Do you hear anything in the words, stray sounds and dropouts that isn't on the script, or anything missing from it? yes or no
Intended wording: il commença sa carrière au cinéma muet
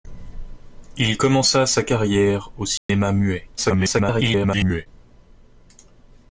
yes